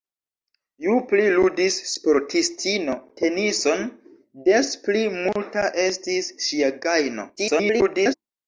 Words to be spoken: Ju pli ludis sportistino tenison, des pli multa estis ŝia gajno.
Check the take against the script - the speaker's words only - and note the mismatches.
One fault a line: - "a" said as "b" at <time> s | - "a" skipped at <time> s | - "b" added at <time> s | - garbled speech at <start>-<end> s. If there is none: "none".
- garbled speech at 7.4-8.1 s